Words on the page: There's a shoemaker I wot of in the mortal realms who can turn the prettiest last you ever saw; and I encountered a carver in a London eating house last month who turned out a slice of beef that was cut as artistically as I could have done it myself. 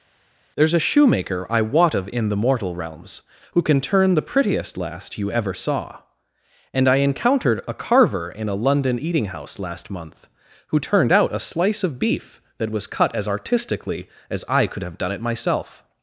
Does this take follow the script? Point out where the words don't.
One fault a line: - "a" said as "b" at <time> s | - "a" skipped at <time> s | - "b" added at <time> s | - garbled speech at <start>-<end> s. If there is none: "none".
none